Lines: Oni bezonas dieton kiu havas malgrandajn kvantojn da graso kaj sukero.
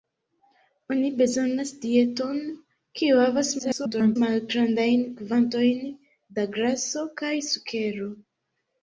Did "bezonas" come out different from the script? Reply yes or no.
no